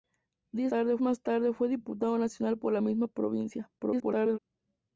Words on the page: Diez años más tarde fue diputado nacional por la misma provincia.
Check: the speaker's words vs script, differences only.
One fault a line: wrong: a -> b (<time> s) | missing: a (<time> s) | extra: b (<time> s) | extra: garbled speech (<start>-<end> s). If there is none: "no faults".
wrong: años -> tarde (0.7 s)
extra: garbled speech (3.8-4.4 s)